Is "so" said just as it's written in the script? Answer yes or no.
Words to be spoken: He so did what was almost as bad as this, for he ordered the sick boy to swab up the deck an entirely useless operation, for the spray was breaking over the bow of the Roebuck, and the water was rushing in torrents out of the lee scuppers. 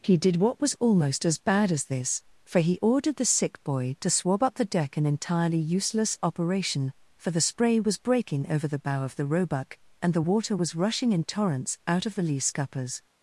no